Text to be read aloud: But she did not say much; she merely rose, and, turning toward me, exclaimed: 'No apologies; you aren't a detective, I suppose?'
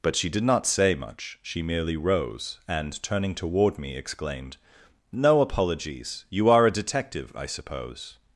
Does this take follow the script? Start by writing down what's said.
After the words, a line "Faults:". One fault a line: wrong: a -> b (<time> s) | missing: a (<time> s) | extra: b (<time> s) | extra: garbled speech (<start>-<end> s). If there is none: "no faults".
But she did not say much; she merely rose, and, turning toward me, exclaimed: 'No apologies; you are a detective, I suppose?'
Faults:
wrong: aren't -> are (6.5 s)